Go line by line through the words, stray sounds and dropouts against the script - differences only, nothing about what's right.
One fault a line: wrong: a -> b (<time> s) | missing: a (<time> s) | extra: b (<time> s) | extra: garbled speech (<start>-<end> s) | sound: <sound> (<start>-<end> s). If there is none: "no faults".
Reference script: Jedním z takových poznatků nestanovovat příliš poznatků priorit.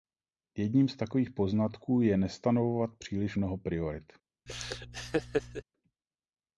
extra: je (2.0 s)
wrong: poznatků -> mnoho (3.3 s)
sound: laugh (4.5-5.6 s)